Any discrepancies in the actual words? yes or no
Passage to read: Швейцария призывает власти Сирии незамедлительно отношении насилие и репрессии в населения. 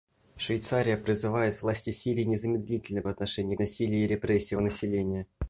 no